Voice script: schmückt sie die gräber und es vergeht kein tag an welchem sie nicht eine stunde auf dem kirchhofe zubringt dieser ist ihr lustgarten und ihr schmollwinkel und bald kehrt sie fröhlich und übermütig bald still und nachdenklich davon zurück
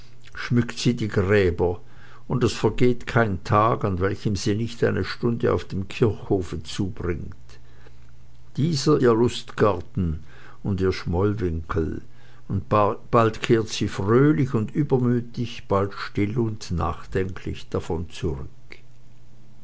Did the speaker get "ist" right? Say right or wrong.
wrong